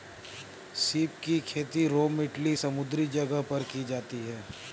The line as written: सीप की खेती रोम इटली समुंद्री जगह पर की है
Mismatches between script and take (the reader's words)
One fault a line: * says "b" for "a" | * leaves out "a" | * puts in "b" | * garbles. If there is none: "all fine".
* puts in "जाती"